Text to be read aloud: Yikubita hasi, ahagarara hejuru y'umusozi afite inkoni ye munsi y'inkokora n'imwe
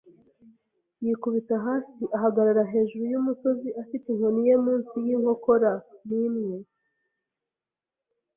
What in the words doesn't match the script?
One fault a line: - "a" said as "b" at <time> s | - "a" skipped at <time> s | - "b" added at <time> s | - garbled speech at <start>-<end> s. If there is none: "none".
none